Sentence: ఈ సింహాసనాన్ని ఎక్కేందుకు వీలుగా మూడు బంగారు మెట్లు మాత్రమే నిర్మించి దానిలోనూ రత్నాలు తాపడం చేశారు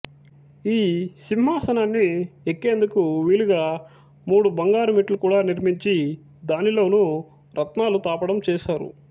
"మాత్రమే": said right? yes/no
no